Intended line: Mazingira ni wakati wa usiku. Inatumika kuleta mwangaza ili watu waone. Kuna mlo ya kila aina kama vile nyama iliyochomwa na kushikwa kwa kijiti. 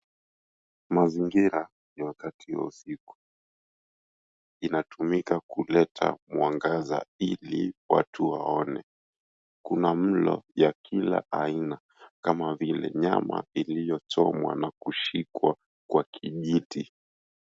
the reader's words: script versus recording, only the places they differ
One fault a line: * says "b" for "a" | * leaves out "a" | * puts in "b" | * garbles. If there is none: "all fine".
all fine